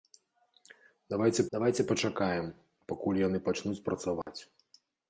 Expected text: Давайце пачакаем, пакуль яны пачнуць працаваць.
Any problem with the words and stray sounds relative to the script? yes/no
yes